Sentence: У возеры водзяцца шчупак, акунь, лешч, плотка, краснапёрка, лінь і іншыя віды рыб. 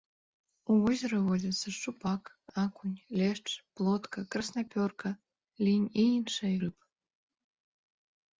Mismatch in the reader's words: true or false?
true